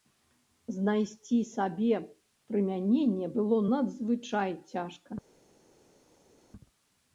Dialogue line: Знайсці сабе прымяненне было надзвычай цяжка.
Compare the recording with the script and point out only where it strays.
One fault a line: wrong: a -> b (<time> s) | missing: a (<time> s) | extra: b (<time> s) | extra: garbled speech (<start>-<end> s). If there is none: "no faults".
no faults